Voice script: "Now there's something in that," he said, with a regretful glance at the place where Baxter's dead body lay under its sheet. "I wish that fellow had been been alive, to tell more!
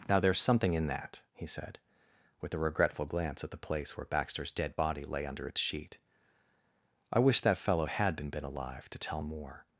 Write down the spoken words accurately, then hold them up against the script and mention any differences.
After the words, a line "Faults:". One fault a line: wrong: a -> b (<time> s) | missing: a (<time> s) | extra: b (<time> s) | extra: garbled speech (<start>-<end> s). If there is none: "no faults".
"Now there's something in that," he said, with a regretful glance at the place where Baxter's dead body lay under its sheet. "I wish that fellow had been been alive, to tell more!
Faults:
no faults